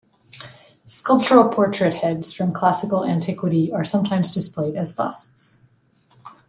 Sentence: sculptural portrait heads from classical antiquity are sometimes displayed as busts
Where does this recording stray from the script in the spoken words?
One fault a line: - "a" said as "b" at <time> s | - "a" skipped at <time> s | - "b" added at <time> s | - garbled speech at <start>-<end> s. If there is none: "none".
none